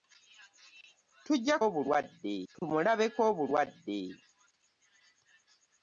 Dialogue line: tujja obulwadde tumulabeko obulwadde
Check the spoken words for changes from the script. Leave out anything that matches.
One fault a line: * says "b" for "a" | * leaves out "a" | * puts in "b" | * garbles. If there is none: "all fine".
all fine